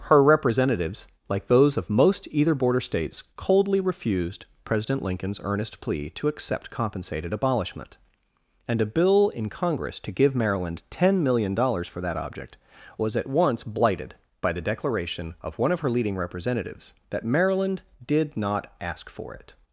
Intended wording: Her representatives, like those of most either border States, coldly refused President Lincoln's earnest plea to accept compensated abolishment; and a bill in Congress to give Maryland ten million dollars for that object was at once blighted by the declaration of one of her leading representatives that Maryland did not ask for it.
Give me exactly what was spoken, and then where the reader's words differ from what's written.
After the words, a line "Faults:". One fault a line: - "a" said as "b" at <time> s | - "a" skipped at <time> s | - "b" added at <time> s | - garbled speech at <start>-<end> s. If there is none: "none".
Her representatives, like those of most either border States, coldly refused President Lincoln's earnest plea to accept compensated abolishment; and a bill in Congress to give Maryland ten million dollars for that object was at once blighted by the declaration of one of her leading representatives that Maryland did not ask for it.
Faults:
none